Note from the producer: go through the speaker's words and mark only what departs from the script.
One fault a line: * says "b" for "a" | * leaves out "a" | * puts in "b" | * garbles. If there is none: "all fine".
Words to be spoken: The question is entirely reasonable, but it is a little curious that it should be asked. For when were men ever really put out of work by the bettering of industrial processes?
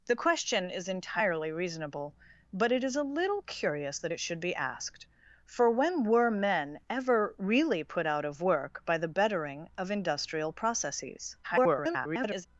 * garbles